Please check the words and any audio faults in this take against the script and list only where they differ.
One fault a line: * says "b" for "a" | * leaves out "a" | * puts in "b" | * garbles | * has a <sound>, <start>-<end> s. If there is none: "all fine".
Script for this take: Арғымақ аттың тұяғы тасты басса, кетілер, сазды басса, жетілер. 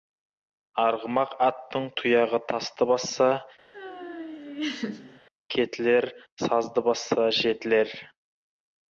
* has a laugh, 3.7-5.2 s